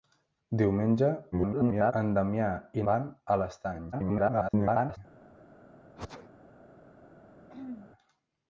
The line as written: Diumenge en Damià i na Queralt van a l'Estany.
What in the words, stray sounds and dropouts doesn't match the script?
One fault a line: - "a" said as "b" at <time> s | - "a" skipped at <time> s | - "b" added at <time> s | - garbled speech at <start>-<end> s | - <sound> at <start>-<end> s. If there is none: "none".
- garbled speech at 1.3-1.9 s
- "na Queralt" skipped at 2.8 s
- garbled speech at 3.9-5.0 s
- sneeze at 6.0-6.3 s
- throat clearing at 7.5-7.9 s